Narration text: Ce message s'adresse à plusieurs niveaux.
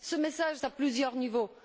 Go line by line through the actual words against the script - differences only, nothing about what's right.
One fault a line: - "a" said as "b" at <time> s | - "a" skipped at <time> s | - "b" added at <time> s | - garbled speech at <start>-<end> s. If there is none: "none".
- "s'adresse" skipped at 0.6 s